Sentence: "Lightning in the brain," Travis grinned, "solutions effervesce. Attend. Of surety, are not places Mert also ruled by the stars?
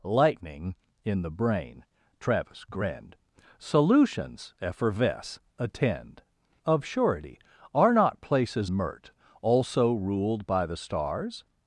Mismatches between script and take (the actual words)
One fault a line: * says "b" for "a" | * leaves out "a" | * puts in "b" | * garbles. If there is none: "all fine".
all fine